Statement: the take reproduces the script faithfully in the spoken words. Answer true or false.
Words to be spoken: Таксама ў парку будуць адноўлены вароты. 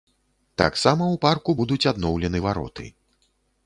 true